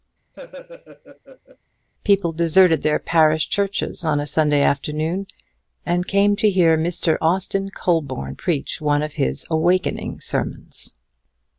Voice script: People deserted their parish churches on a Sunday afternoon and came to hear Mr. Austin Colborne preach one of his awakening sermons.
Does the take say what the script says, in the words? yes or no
yes